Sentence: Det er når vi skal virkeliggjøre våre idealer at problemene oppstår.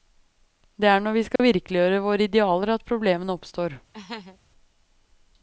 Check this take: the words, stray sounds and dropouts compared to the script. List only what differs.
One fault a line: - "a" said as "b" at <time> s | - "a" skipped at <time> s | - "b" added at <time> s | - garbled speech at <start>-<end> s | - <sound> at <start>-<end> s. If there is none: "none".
- dropout at 1.4-1.4 s
- laugh at 3.9-4.4 s